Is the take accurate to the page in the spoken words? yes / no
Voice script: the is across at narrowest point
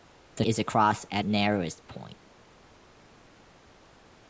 yes